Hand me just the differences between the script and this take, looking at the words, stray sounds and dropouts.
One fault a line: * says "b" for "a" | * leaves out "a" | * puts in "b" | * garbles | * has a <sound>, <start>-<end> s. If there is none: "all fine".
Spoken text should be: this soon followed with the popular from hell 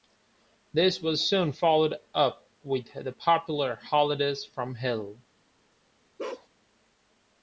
* puts in "was"
* puts in "up"
* puts in "holidays"
* has a bark, 6.2-6.5 s